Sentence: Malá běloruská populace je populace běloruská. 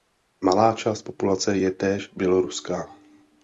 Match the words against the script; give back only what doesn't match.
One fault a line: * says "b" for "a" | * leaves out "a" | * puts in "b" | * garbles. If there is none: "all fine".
* says "část" for "běloruská"
* says "též" for "populace"